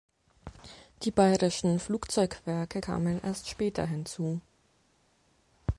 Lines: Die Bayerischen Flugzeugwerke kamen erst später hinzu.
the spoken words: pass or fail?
pass